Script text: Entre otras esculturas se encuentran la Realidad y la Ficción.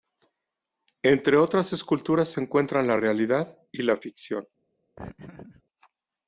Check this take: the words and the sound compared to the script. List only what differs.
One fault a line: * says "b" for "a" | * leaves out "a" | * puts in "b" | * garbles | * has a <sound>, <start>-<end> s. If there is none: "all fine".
* has a laugh, 5.0-5.6 s